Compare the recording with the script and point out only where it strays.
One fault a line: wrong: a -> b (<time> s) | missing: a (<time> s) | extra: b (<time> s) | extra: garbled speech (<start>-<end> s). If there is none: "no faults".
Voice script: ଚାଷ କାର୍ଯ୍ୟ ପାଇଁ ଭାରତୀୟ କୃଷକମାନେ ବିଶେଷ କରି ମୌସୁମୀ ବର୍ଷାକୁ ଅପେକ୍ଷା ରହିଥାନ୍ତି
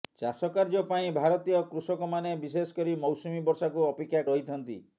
no faults